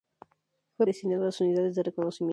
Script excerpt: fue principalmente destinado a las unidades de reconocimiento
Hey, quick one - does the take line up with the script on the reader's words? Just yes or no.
no